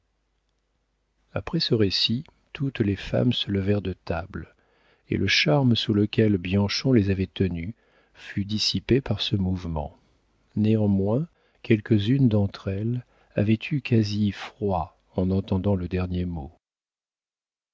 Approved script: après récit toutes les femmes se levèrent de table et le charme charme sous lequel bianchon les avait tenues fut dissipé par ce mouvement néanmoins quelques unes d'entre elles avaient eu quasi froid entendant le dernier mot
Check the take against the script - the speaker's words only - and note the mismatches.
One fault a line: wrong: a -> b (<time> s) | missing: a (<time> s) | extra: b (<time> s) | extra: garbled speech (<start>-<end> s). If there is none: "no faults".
extra: ce (1.6 s)
missing: charme (5.8 s)
extra: en (15.2 s)